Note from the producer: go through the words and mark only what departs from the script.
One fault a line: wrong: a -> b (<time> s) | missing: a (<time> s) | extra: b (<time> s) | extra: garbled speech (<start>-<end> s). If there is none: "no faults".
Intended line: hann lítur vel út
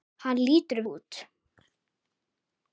missing: vel (0.8 s)